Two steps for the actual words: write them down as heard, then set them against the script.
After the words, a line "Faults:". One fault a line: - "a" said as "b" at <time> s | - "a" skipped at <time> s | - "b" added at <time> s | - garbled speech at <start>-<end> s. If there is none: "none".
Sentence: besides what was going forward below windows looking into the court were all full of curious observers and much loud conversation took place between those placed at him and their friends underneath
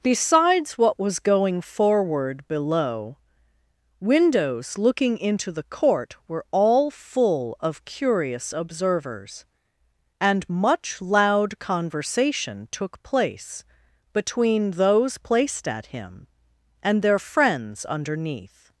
besides what was going forward below windows looking into the court were all full of curious observers and much loud conversation took place between those placed at him and their friends underneath
Faults:
none